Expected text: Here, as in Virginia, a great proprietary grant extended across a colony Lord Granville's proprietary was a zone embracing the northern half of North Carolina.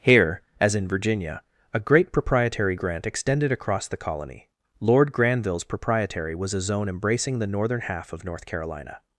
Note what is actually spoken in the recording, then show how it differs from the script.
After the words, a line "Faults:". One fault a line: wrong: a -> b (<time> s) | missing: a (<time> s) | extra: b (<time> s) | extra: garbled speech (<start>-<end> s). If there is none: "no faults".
Here, as in Virginia, a great proprietary grant extended across the colony Lord Granville's proprietary was a zone embracing the northern half of North Carolina.
Faults:
wrong: a -> the (3.9 s)